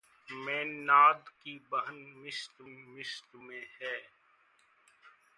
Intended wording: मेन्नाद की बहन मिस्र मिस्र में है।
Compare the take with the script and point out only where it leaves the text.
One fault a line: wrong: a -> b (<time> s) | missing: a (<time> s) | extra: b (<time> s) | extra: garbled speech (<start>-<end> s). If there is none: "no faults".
no faults